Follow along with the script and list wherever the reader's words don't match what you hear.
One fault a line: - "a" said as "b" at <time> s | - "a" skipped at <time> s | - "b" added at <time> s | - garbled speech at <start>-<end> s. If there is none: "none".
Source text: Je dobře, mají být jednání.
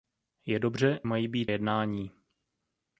none